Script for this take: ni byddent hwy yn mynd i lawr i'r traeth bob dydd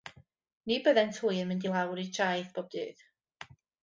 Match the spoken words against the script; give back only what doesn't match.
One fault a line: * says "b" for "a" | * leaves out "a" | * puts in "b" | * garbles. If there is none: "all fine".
all fine